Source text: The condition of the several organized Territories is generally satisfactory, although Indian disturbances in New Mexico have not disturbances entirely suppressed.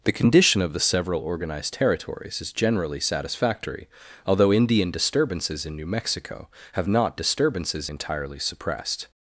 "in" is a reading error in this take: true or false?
false